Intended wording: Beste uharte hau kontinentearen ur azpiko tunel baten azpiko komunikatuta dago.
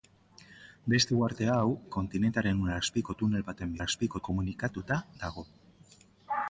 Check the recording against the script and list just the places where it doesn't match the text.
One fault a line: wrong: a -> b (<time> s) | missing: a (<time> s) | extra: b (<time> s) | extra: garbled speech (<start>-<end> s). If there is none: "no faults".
no faults